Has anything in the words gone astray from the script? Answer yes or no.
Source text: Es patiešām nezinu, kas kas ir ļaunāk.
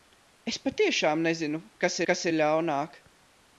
no